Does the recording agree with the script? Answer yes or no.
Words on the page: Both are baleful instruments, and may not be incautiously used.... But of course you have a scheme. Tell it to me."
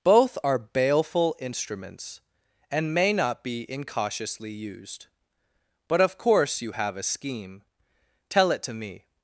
yes